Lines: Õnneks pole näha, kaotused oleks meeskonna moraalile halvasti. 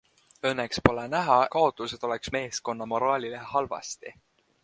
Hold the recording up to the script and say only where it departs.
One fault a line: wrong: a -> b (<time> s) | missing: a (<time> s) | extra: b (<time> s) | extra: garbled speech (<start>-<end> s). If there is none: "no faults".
no faults